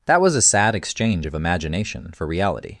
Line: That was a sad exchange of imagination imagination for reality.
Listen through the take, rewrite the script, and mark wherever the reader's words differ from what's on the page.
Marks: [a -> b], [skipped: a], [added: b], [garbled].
That was a sad exchange of imagination [skipped: imagination] for reality.